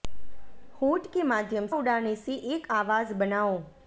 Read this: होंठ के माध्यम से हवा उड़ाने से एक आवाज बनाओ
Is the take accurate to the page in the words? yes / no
no